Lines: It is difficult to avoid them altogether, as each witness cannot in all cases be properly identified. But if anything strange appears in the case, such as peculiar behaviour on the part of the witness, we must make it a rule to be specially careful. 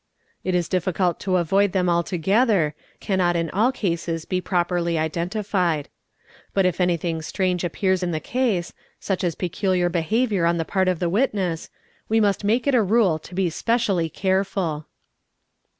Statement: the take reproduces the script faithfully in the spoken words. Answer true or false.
false